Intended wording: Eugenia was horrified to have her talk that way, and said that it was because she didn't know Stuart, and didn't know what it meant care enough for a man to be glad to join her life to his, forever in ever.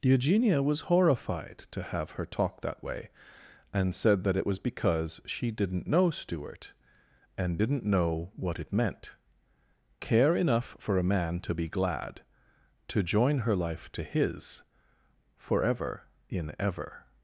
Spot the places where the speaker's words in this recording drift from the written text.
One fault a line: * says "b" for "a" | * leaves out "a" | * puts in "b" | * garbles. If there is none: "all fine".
all fine